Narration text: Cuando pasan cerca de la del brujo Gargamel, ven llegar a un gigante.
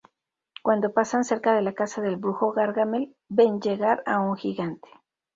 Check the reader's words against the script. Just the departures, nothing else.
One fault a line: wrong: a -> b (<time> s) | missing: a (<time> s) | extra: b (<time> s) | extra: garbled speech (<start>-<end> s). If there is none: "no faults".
extra: casa (1.7 s)